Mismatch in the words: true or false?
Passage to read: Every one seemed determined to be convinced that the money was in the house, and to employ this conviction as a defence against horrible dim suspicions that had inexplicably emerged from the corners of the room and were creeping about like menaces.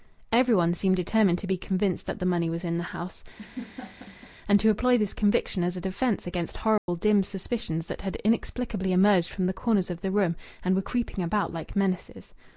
false